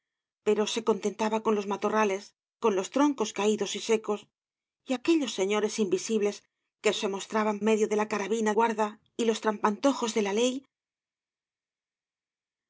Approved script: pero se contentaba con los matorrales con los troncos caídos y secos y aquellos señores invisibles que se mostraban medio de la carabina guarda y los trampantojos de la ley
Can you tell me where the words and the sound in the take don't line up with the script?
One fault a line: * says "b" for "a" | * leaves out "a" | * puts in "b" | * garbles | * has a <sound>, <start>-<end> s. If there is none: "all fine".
all fine